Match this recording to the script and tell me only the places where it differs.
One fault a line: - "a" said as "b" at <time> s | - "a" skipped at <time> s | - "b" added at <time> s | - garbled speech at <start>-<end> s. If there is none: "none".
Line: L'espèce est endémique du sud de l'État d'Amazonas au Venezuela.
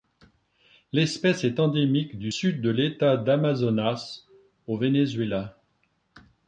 none